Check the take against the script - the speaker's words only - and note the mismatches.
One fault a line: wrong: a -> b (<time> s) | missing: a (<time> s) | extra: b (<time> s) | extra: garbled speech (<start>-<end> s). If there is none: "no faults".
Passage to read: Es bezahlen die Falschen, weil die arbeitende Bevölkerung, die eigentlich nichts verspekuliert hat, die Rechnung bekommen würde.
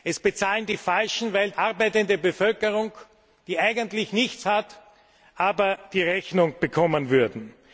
missing: die (1.5 s)
missing: verspekuliert (4.4 s)